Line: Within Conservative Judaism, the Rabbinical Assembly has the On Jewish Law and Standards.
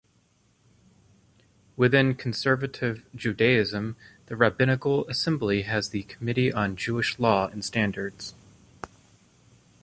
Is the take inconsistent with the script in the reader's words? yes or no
yes